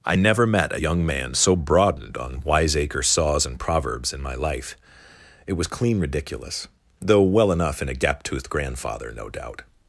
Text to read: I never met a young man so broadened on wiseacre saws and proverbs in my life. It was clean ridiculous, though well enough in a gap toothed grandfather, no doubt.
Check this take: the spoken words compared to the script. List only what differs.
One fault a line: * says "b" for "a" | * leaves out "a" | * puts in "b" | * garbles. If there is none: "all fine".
all fine